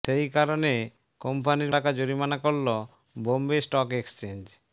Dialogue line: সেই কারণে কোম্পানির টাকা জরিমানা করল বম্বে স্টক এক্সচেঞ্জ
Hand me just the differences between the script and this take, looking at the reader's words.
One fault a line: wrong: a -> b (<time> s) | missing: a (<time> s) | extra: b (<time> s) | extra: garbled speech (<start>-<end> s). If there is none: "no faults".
no faults